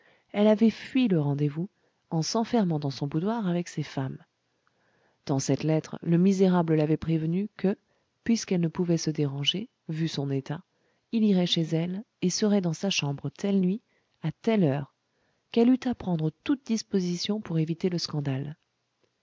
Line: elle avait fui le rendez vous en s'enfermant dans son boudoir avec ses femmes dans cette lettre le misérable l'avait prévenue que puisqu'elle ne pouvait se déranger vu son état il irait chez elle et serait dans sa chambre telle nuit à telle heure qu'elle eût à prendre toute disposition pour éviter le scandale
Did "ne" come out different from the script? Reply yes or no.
no